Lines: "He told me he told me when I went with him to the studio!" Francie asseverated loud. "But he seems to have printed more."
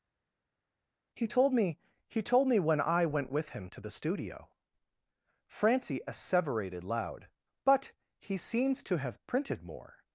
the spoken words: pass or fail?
pass